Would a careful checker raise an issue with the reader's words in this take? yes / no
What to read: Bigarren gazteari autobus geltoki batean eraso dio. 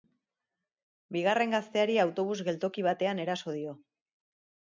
no